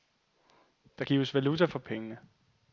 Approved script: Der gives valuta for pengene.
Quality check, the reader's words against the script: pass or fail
pass